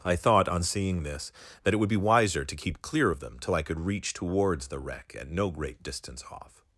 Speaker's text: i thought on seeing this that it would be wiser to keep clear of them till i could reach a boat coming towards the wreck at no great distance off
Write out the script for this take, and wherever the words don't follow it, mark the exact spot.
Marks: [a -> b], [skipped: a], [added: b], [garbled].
i thought on seeing this that it would be wiser to keep clear of them till i could reach [skipped: a boat coming] towards the wreck at no great distance off